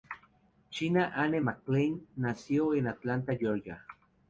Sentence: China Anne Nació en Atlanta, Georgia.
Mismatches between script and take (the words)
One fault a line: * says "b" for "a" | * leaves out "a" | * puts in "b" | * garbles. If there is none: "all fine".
* puts in "McClain"